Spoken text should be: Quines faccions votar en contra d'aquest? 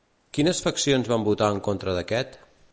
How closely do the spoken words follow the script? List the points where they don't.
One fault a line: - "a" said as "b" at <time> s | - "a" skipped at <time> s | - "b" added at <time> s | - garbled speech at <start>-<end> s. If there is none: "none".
- "van" added at 1.1 s